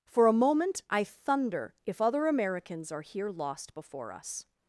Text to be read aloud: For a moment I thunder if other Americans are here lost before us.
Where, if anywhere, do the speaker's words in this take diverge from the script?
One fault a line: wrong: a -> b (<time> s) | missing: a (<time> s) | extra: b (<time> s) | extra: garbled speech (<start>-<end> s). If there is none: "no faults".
no faults